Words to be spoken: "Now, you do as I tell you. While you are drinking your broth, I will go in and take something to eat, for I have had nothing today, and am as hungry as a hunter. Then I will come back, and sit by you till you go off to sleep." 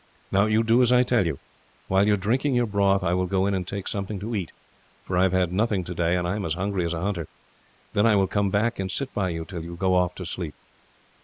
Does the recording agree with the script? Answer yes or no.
yes